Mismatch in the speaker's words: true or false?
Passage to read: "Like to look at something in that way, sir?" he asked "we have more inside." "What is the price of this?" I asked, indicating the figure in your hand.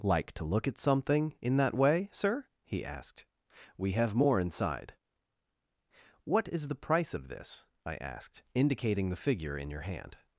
false